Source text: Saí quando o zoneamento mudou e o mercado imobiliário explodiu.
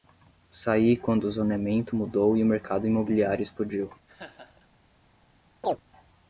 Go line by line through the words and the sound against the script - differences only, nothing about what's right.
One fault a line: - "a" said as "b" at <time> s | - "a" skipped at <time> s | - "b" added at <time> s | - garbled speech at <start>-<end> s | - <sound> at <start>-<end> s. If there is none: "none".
- laugh at 4.1-4.7 s
- chirp at 5.6-5.8 s